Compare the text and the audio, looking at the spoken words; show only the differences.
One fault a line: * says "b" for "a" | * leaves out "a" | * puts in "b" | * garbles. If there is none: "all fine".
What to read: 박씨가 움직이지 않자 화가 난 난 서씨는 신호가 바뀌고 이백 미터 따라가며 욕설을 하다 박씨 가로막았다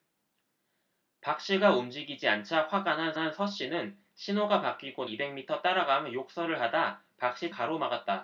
all fine